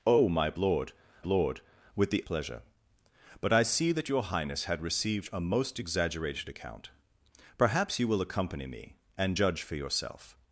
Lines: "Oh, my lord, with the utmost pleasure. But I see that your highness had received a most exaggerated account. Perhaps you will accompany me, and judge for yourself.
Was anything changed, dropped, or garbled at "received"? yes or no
no